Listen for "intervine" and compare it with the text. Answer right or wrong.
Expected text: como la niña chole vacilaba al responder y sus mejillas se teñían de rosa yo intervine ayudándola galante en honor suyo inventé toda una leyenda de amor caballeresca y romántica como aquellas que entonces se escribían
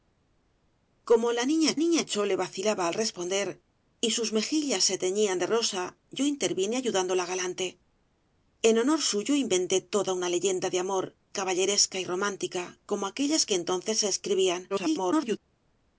right